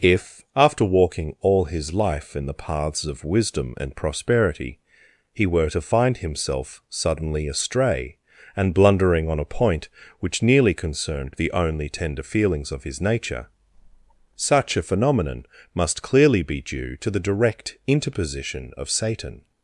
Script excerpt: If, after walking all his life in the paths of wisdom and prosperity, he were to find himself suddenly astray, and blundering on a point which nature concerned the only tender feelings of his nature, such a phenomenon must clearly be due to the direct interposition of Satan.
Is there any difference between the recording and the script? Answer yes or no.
yes